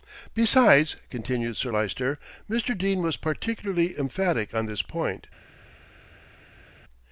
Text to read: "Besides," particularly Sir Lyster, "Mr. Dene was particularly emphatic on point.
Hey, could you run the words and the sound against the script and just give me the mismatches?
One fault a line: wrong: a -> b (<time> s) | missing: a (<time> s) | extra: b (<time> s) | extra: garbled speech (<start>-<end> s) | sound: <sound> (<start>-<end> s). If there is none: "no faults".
wrong: particularly -> continued (1.1 s)
extra: this (4.7 s)